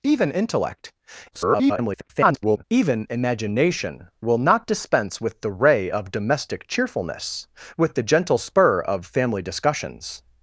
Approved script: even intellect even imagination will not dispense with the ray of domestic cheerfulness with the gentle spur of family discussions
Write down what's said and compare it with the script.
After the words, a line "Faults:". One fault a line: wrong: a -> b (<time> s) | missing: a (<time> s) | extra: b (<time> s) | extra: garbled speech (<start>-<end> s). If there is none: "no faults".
even intellect [garbled] even imagination will not dispense with the ray of domestic cheerfulness with the gentle spur of family discussions
Faults:
extra: garbled speech (1.3-2.6 s)